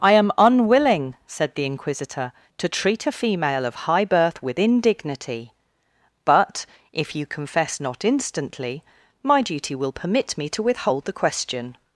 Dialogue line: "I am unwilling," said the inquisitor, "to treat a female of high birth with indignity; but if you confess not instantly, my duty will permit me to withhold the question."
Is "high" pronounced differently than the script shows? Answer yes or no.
no